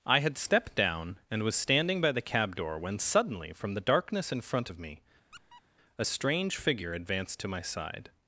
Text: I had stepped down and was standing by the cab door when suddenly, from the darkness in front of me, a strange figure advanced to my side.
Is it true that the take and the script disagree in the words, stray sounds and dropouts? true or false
true